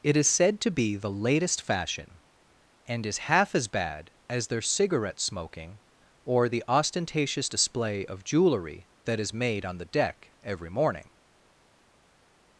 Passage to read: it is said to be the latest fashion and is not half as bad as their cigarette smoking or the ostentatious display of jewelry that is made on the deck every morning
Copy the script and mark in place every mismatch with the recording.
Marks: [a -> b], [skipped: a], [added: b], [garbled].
it is said to be the latest fashion and is [skipped: not] half as bad as their cigarette smoking or the ostentatious display of jewelry that is made on the deck every morning